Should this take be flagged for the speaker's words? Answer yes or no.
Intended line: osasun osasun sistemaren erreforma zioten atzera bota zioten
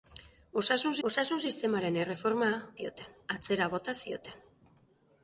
no